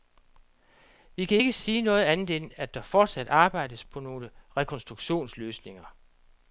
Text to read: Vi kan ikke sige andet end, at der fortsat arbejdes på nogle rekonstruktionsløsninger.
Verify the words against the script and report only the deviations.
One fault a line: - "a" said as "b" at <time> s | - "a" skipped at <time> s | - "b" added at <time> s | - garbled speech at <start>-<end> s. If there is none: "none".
none